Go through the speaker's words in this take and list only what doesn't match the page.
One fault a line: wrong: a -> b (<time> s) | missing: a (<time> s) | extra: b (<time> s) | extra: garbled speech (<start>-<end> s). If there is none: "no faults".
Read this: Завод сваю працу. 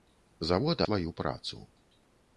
no faults